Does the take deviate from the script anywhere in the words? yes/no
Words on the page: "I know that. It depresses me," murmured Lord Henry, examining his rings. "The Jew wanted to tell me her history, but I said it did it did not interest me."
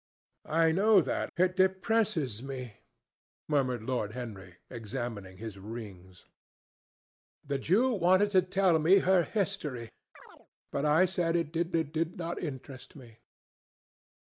no